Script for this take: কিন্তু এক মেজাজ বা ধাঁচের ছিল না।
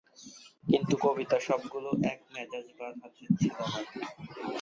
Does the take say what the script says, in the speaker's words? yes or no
no